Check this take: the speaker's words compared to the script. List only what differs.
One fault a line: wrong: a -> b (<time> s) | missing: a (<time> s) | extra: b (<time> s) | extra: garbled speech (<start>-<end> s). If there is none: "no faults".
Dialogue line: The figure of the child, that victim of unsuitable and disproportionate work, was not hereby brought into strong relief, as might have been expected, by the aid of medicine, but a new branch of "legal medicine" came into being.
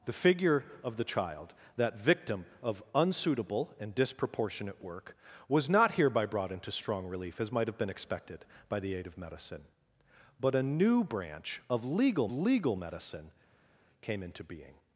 extra: legal (12.3 s)